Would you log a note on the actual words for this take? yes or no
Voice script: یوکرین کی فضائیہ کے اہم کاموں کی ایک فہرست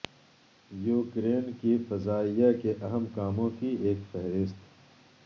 no